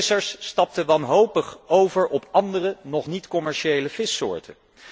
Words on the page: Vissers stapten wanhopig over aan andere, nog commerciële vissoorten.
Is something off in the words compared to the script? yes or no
yes